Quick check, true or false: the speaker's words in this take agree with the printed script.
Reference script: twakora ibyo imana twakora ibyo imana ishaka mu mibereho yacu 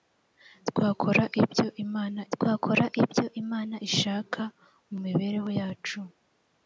true